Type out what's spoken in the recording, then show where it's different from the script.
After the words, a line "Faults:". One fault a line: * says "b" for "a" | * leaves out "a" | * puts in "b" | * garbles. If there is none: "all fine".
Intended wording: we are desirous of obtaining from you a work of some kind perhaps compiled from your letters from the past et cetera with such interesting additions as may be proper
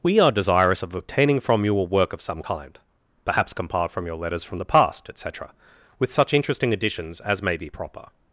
we are desirous of obtaining from you a work of some kind perhaps compiled from your letters from the past et cetera with such interesting additions as may be proper
Faults:
all fine